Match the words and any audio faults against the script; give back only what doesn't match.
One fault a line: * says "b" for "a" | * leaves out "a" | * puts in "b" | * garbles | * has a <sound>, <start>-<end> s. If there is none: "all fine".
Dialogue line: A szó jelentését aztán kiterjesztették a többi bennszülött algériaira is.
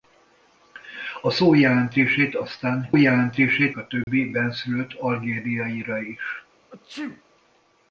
* says "jelentését" for "kiterjesztették"
* has a dropout, 4.0-4.1 s
* has a sneeze, 6.7-7.2 s